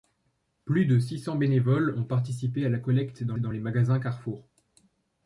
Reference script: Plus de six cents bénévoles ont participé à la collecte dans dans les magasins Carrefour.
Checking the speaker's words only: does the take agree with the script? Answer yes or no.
yes